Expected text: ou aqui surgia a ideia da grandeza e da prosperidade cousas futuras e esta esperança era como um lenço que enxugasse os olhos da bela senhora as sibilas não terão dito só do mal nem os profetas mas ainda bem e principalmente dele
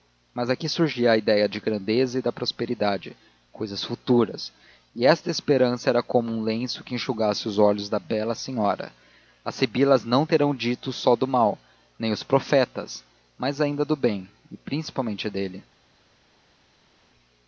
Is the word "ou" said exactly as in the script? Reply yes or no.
no